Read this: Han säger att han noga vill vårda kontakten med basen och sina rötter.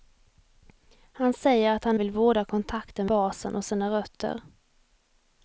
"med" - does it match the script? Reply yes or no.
no